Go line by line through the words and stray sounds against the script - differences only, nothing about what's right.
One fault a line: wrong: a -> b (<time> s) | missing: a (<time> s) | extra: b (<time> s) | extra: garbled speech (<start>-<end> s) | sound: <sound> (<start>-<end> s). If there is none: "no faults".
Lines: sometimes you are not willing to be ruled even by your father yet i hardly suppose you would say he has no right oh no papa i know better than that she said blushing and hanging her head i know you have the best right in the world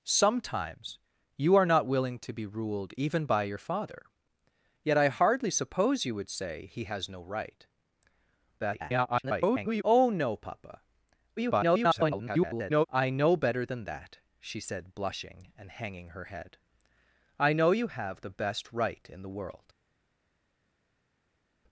extra: garbled speech (8.6-9.8 s)
extra: garbled speech (11.4-12.9 s)